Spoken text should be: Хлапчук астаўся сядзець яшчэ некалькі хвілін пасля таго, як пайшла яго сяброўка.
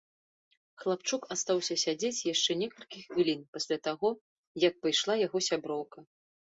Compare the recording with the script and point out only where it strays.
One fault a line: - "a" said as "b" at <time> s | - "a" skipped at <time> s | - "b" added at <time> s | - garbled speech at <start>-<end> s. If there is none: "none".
none